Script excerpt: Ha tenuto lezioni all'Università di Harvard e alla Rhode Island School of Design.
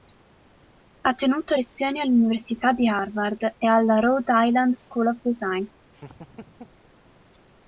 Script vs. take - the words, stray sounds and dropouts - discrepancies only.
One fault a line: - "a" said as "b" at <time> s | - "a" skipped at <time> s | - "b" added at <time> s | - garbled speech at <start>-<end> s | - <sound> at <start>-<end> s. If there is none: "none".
- laugh at 5.9-6.8 s